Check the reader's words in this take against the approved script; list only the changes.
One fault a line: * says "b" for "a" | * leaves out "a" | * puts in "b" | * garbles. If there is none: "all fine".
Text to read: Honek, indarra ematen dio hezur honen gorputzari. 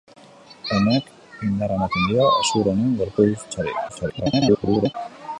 * garbles